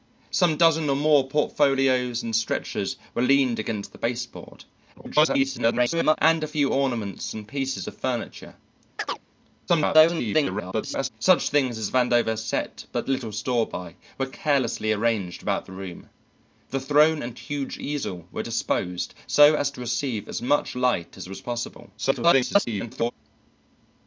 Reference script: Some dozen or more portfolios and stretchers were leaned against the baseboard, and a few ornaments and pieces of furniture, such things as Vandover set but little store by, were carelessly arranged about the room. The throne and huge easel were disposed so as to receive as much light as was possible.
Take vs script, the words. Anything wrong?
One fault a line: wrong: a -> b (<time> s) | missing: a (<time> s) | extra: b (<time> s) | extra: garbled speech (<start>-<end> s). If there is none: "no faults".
extra: garbled speech (4.9-6.2 s)
extra: garbled speech (9.7-11.1 s)
extra: garbled speech (22.0-23.1 s)